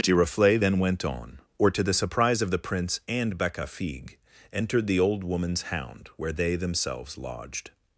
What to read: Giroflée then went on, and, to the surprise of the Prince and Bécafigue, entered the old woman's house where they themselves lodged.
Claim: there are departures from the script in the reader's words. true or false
true